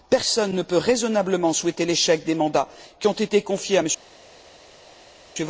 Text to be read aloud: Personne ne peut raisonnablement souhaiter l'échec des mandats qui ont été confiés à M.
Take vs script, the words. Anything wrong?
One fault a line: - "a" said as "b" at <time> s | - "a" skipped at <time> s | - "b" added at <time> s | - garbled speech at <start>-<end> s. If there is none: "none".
none